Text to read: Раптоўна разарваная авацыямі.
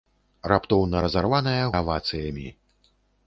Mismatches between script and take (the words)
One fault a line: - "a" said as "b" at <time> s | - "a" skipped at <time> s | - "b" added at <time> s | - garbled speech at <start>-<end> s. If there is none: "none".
none